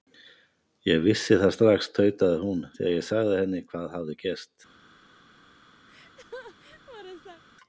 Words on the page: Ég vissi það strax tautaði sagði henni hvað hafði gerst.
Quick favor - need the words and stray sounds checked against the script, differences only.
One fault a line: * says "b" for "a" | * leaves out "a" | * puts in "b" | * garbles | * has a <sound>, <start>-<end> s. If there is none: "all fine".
* puts in "hún þegar ég"
* has a laugh, 5.9-7.4 s